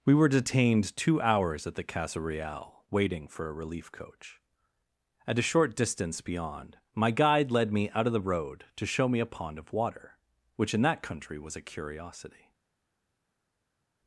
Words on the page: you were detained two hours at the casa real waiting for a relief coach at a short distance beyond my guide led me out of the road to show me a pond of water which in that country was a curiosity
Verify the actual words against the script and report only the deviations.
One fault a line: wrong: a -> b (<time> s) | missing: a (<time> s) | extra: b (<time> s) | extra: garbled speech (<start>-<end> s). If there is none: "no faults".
wrong: you -> we (0.0 s)